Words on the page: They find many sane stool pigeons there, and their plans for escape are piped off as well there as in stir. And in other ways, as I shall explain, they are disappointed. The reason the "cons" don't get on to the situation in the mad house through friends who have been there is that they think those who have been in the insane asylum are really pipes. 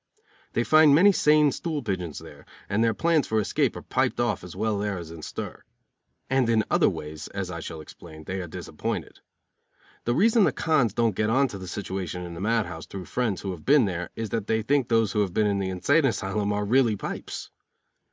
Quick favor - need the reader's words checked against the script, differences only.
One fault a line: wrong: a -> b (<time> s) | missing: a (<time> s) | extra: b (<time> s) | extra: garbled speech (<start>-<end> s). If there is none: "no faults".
no faults